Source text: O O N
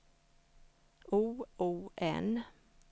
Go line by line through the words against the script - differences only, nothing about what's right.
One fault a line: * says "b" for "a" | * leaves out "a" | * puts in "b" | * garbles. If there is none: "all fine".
all fine